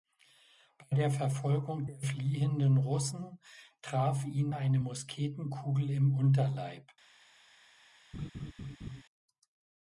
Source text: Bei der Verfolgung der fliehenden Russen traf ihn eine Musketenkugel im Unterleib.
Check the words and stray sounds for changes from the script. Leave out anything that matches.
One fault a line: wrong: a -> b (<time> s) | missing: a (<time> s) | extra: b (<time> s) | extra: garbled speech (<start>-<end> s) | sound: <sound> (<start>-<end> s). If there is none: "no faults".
sound: laugh (8.1-9.0 s)